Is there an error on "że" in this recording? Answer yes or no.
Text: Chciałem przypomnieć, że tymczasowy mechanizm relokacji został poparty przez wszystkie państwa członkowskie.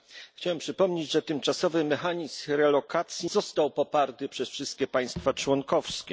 no